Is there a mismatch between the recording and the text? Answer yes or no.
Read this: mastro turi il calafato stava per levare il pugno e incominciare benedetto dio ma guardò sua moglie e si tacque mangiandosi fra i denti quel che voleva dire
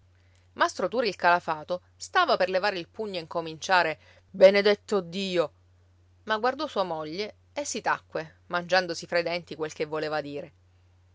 no